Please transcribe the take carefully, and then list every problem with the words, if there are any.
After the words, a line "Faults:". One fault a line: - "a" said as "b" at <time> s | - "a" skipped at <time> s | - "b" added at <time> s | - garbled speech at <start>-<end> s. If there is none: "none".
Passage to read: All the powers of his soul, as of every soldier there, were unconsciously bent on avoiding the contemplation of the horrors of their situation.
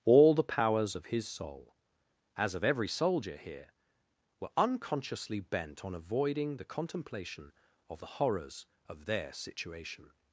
All the powers of his soul, as of every soldier here, were unconsciously bent on avoiding the contemplation of the horrors of their situation.
Faults:
- "there" said as "here" at 3.4 s